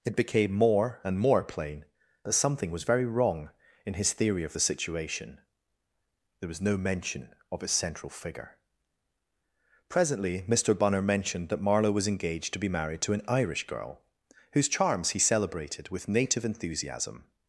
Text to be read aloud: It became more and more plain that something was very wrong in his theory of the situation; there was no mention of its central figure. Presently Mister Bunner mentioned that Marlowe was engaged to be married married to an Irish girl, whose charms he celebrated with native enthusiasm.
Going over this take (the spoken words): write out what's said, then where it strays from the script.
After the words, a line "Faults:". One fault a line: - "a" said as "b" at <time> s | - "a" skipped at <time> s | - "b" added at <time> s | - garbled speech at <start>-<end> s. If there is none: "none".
It became more and more plain that something was very wrong in his theory of the situation; there was no mention of its central figure. Presently Mister Bunner mentioned that Marlowe was engaged to be married to an Irish girl, whose charms he celebrated with native enthusiasm.
Faults:
- "married" skipped at 13.0 s